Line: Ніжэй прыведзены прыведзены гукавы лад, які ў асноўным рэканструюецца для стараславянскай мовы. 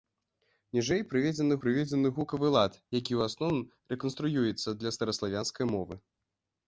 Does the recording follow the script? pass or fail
pass